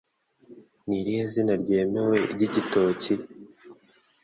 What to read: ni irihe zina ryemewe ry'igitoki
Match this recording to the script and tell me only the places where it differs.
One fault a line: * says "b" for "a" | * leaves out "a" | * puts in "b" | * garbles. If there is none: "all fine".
all fine